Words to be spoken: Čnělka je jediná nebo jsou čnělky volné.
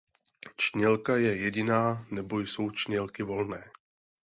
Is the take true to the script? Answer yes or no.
yes